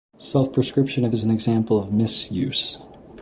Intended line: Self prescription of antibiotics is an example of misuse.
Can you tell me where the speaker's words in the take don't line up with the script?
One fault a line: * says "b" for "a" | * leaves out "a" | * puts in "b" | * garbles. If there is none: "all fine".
* leaves out "antibiotics"